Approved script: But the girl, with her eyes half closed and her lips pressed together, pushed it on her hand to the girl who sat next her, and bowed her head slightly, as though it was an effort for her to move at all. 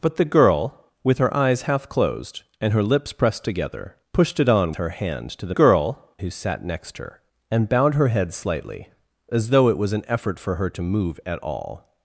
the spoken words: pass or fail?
pass